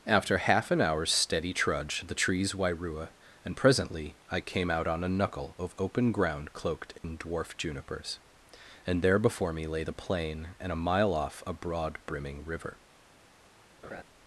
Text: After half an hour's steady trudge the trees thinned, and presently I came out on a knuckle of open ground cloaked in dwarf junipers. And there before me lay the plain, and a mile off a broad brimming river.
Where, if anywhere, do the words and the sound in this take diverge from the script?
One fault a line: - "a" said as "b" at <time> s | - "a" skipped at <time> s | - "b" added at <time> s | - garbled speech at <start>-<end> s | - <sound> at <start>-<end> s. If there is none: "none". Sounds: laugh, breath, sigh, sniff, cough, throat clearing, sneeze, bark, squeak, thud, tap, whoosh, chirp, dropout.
- "thinned" said as "wairua" at 2.5 s
- dropout at 7.0-7.0 s
- laugh at 13.8-14.0 s